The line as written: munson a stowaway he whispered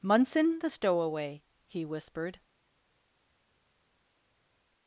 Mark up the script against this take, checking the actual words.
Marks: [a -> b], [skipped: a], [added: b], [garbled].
munson [a -> the] stowaway he whispered